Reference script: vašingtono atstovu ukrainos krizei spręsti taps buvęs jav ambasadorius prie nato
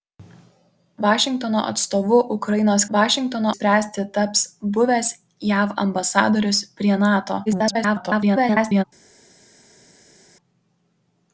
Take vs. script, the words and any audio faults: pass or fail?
fail